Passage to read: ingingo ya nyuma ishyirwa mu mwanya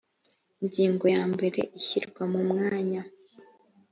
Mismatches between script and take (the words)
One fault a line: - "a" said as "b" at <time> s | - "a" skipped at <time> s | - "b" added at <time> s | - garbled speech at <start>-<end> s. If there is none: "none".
- "nyuma" said as "mbere" at 1.3 s